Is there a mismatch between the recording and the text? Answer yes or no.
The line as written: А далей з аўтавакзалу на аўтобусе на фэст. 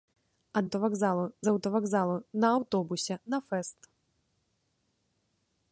yes